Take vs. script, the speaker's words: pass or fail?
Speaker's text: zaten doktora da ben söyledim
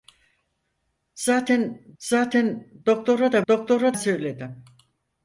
fail